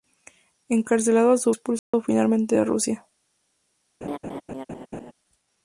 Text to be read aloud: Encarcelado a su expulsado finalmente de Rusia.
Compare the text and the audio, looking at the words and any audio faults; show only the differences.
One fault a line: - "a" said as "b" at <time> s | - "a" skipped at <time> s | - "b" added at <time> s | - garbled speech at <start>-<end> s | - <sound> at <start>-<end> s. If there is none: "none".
- dropout at 1.8-1.9 s
- laugh at 4.0-5.1 s